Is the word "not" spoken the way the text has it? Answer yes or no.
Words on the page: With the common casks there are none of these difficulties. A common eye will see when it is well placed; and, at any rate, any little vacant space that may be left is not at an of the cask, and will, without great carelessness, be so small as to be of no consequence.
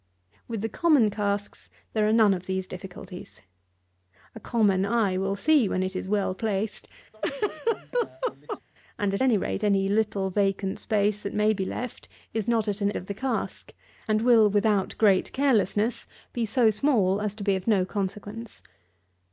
yes